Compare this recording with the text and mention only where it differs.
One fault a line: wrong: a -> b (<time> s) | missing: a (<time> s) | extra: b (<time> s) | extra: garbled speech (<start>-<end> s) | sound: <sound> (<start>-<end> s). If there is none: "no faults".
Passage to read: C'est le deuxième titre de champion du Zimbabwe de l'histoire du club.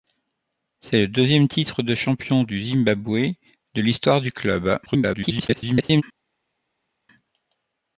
extra: garbled speech (4.9-6.0 s)